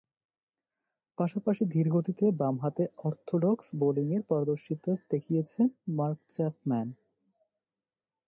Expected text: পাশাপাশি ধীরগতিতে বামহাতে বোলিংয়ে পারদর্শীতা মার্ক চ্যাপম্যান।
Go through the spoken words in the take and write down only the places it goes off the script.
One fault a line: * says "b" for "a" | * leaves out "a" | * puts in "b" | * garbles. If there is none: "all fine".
* puts in "অর্থোডক্স"
* puts in "দেখিয়েছেন"